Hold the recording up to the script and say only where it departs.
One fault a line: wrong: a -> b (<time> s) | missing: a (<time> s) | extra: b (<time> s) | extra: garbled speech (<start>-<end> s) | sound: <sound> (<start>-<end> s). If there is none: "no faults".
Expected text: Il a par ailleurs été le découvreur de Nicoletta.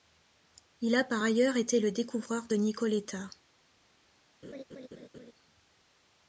sound: laugh (4.4-5.3 s)